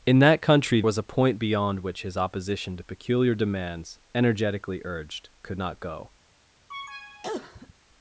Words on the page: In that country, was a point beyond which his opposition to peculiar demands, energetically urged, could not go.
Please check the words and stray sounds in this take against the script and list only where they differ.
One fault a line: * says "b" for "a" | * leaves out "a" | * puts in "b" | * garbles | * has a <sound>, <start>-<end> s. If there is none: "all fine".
* has a cough, 6.7-7.7 s